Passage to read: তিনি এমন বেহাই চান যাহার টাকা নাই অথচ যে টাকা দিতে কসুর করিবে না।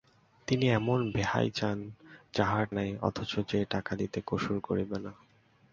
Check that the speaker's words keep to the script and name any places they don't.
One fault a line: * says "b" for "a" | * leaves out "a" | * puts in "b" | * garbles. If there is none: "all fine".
* leaves out "টাকা"